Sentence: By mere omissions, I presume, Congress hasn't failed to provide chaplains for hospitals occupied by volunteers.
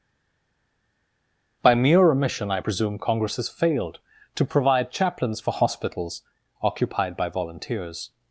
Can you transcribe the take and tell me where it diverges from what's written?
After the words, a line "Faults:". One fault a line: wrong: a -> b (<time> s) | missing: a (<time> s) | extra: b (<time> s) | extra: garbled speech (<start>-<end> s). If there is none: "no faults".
By mere omission, I presume, Congress has failed to provide chaplains for hospitals occupied by volunteers.
Faults:
wrong: omissions -> omission (2.1 s)
wrong: hasn't -> has (3.4 s)